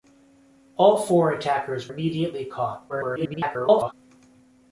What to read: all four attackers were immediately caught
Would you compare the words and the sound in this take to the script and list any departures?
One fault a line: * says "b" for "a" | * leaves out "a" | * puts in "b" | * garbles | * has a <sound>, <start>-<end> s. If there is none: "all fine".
* leaves out "were"
* garbles